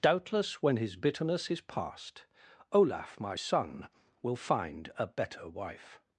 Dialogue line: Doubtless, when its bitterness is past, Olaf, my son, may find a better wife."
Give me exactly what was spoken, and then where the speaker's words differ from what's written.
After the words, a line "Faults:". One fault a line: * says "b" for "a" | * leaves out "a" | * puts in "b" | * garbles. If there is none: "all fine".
Doubtless, when his bitterness is past, Olaf, my son, will find a better wife."
Faults:
* says "his" for "its"
* says "will" for "may"